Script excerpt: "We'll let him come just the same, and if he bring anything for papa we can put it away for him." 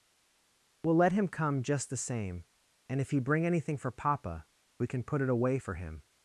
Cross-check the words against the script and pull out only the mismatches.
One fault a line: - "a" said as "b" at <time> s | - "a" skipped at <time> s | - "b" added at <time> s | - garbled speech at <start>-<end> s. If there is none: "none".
none